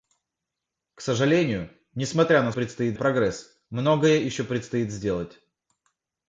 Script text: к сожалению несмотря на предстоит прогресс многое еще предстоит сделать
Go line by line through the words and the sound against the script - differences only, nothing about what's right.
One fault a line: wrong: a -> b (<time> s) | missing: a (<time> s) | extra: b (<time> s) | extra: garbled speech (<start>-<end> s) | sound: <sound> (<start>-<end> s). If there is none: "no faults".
no faults